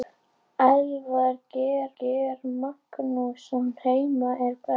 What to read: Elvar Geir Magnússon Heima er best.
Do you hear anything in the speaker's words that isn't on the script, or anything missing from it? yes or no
yes